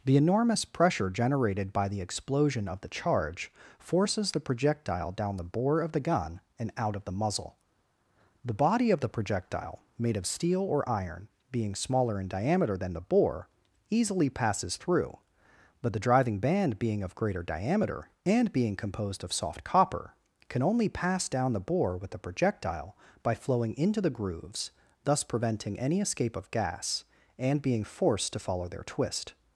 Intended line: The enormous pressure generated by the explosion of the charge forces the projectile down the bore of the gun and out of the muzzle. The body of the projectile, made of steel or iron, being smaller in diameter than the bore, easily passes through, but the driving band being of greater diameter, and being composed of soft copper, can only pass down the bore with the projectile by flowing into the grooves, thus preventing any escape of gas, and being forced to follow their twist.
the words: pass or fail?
pass